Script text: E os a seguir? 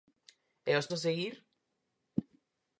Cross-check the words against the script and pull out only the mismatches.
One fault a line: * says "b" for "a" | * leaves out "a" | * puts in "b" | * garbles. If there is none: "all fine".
all fine